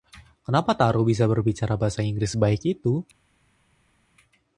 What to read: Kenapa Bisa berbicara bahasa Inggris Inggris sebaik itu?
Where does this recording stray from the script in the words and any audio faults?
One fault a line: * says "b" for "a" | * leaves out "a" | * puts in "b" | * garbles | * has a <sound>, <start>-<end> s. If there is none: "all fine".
* puts in "Taro"
* leaves out "Inggris"